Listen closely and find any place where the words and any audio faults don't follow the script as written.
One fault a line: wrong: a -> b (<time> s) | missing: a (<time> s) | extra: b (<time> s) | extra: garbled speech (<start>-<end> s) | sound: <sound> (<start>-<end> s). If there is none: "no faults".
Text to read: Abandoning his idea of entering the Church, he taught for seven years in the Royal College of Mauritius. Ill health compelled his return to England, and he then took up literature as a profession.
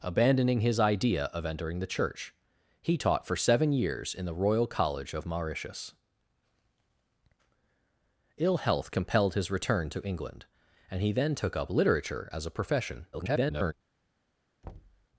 extra: garbled speech (13.1-13.7 s)
sound: thud (14.6-15.1 s)